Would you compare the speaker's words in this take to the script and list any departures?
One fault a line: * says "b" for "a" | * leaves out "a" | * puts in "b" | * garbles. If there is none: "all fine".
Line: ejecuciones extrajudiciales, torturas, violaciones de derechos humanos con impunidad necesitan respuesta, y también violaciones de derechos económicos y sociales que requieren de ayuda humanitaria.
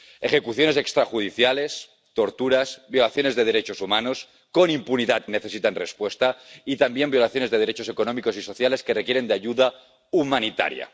all fine